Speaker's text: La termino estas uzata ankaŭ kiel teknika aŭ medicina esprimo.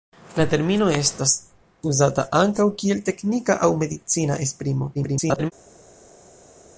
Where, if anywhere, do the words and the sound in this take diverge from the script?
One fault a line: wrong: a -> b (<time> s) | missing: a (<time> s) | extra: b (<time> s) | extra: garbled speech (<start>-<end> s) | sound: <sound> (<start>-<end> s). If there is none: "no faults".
extra: garbled speech (4.9-5.5 s)